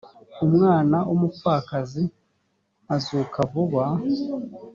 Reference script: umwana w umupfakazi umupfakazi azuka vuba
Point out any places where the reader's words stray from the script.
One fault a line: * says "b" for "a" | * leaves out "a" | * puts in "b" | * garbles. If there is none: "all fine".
* leaves out "umupfakazi"